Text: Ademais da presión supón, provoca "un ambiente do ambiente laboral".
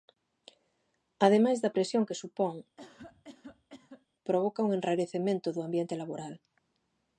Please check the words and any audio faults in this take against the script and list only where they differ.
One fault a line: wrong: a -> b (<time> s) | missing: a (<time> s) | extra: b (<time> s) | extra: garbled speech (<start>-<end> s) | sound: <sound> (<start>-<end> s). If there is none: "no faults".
extra: que (2.1 s)
sound: cough (2.8-4.1 s)
wrong: ambiente -> enrarecemento (4.8 s)